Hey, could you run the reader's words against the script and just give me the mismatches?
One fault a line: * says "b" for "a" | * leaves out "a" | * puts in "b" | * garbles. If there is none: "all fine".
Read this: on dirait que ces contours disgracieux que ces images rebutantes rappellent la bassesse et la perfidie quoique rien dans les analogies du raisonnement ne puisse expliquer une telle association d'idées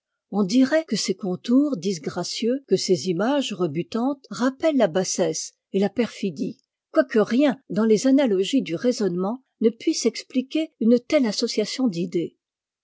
all fine